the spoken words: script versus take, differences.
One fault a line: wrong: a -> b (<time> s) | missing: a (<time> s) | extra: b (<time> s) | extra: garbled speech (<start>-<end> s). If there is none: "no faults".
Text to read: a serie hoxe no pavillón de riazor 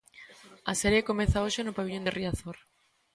extra: comeza (1.1 s)